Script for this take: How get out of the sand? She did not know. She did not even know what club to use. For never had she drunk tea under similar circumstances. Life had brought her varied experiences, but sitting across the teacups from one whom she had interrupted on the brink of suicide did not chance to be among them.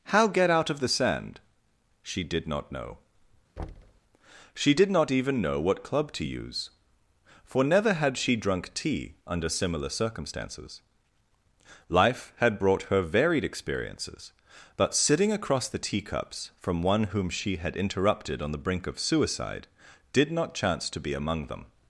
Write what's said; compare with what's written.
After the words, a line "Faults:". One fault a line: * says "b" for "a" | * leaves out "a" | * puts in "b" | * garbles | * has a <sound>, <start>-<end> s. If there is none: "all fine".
How get out of the sand? She did not know. She did not even know what club to use. For never had she drunk tea under similar circumstances. Life had brought her varied experiences, but sitting across the teacups from one whom she had interrupted on the brink of suicide did not chance to be among them.
Faults:
* has a thud, 3.6-4.0 s